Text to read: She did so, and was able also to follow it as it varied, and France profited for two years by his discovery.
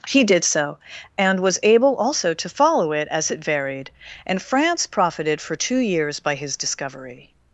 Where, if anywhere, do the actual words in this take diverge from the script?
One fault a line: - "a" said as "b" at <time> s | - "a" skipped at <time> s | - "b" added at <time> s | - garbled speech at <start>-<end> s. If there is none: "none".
- "She" said as "He" at 0.1 s